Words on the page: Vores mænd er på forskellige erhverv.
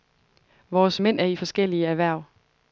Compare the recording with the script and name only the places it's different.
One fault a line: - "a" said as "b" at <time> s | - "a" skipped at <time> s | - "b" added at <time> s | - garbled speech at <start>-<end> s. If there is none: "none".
- "på" said as "i" at 1.2 s